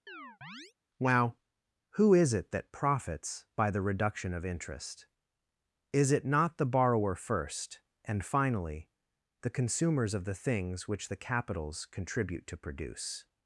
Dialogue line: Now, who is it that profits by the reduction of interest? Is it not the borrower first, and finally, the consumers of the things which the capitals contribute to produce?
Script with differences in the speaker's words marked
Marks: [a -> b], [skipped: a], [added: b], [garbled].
Now, who is it that profits by the reduction of interest? Is it not the borrower first, and finally, the consumers of the things which the capitals contribute to produce?